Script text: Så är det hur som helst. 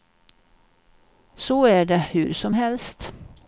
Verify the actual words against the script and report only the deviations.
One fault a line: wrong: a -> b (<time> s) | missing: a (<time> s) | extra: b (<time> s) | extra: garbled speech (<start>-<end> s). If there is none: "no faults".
no faults